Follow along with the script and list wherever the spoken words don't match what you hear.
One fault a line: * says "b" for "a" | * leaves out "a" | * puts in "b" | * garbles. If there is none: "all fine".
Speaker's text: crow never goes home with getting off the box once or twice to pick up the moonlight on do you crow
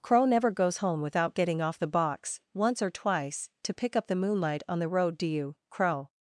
* says "without" for "with"
* puts in "the road"